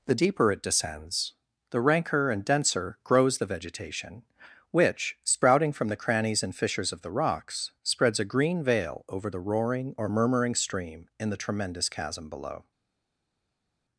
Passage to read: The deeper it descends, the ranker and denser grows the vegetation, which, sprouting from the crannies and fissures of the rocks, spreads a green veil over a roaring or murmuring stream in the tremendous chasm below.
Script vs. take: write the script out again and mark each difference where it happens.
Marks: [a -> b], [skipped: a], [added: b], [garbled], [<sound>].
The deeper it descends, the ranker and denser grows the vegetation, which, sprouting from the crannies and fissures of the rocks, spreads a green veil over [a -> the] roaring or murmuring stream in the tremendous chasm below.